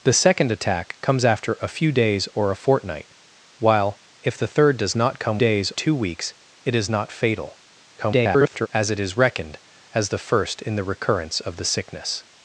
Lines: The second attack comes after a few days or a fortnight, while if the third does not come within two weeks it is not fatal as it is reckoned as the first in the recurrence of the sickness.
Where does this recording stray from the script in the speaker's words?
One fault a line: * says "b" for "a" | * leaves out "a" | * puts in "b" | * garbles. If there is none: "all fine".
* says "days" for "within"
* garbles